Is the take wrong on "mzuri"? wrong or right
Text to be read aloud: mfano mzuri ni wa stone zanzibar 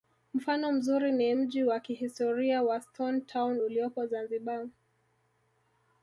right